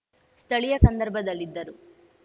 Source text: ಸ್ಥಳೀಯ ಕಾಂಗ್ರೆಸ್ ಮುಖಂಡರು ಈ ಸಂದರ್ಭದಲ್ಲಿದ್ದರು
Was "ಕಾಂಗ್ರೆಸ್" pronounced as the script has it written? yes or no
no